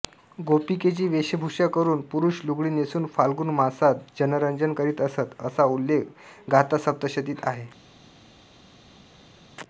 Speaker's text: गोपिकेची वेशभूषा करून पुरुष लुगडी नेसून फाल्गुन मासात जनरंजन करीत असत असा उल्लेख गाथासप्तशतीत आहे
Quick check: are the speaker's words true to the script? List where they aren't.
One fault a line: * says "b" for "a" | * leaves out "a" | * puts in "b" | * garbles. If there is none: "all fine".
all fine